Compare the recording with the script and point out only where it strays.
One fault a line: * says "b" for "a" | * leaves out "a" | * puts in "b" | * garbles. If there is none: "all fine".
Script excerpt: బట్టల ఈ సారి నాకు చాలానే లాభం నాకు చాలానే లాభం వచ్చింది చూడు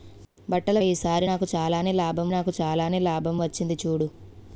all fine